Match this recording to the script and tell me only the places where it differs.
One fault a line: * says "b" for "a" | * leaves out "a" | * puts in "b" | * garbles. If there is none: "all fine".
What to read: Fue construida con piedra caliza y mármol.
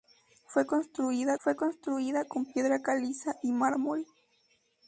* puts in "fue construida"